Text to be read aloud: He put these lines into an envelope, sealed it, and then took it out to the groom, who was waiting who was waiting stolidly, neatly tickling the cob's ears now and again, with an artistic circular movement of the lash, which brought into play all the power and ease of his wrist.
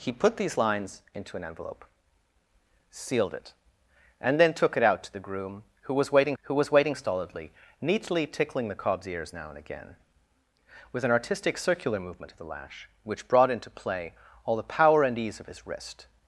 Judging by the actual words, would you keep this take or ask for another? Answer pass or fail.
pass